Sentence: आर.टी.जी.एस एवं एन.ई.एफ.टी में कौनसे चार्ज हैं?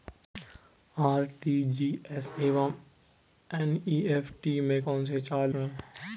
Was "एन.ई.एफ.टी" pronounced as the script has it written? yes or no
yes